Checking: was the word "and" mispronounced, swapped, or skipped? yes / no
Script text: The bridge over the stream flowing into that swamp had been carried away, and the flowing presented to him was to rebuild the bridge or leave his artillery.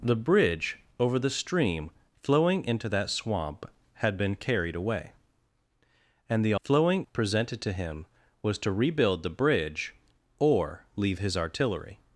no